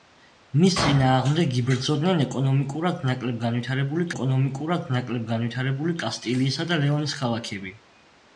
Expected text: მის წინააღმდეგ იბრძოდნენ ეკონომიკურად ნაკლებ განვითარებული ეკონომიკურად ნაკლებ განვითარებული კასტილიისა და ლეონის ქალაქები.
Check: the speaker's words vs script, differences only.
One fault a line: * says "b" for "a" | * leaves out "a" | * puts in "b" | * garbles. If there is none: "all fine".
all fine